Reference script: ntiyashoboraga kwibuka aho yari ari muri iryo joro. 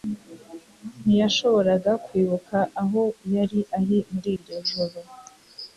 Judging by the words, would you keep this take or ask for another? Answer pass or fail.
pass